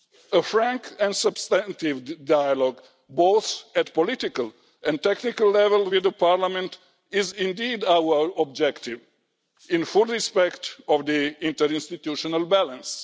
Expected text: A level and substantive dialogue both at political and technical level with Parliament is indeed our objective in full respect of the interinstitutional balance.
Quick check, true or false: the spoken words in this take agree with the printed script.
false